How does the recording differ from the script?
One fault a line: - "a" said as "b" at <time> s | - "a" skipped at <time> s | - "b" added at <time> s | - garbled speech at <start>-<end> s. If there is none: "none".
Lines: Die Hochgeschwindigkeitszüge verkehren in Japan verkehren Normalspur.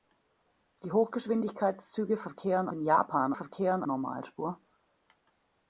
none